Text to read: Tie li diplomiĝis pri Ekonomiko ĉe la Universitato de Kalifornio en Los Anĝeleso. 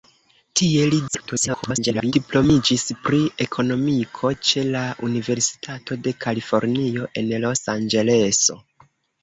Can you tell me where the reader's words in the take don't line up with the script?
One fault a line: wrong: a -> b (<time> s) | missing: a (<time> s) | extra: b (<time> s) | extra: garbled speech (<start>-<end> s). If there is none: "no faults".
extra: garbled speech (1.1-2.1 s)